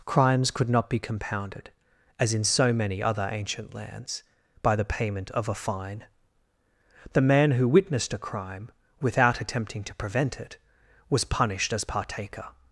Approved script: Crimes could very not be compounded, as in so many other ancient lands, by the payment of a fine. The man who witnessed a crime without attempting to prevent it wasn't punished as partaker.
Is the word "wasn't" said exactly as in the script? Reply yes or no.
no